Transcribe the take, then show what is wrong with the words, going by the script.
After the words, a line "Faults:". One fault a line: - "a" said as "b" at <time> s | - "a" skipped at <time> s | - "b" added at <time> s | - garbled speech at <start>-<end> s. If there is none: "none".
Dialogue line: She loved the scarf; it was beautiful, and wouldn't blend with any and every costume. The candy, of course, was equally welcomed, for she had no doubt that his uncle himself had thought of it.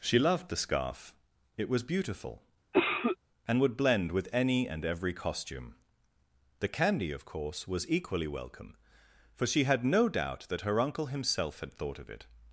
She loved the scarf; it was beautiful, and would blend with any and every costume. The candy, of course, was equally welcome, for she had no doubt that her uncle himself had thought of it.
Faults:
- "wouldn't" said as "would" at 3.6 s
- "welcomed" said as "welcome" at 8.3 s
- "his" said as "her" at 10.6 s